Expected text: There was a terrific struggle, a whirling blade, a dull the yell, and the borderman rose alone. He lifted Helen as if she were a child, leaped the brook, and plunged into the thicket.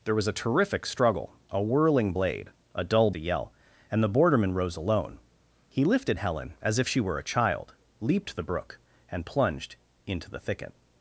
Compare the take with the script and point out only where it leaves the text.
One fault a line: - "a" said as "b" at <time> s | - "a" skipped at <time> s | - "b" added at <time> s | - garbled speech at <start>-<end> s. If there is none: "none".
none